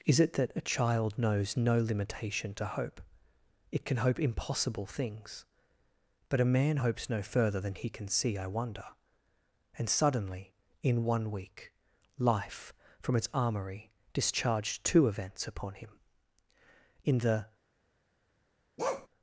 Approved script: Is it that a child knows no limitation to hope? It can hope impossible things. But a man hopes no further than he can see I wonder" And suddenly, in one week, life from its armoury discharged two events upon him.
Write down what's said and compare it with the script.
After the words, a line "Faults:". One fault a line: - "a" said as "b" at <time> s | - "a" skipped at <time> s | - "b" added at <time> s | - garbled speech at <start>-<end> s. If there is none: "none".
Is it that a child knows no limitation to hope? It can hope impossible things. But a man hopes no further than he can see I wonder" And suddenly, in one week, life from its armoury discharged two events upon him. In the
Faults:
- "In the" added at 17.0 s